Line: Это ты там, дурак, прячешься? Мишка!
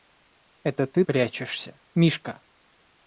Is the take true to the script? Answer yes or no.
no